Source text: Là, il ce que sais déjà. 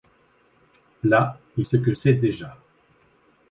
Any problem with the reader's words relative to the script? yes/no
no